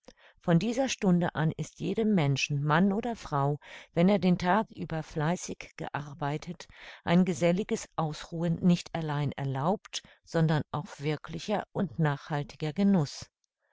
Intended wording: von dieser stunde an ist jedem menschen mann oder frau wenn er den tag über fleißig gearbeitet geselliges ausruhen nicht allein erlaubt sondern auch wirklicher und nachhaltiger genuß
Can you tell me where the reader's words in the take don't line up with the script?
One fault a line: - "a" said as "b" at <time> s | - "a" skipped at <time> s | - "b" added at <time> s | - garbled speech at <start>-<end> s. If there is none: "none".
- "ein" added at 7.0 s